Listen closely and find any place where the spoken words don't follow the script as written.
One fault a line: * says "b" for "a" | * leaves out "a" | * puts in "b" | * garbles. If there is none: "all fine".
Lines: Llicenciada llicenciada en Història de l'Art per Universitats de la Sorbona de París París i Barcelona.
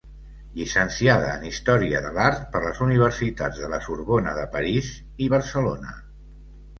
* leaves out "llicenciada"
* puts in "les"
* leaves out "París"